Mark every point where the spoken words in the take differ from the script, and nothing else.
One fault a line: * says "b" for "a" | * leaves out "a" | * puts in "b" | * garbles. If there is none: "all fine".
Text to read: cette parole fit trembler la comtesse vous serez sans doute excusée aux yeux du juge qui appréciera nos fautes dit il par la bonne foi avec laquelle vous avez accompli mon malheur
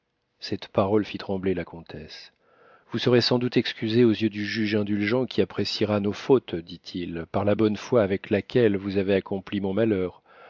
* puts in "indulgent"